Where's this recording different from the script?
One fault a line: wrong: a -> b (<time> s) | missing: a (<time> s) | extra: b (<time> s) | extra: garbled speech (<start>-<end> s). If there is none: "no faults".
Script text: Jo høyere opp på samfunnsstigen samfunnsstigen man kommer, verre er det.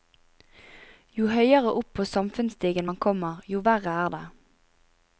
missing: samfunnsstigen (2.9 s)
extra: jo (3.5 s)